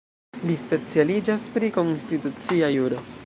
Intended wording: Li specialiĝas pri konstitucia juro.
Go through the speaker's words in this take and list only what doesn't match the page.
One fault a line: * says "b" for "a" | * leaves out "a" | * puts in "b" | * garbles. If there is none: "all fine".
all fine